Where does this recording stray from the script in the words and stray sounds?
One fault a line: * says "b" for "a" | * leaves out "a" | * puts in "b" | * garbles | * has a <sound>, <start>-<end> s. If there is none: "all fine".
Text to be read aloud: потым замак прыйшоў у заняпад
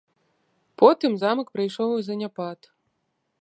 all fine